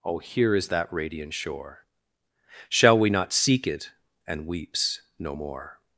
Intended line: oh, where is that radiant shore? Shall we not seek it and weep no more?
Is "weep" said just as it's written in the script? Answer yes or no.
no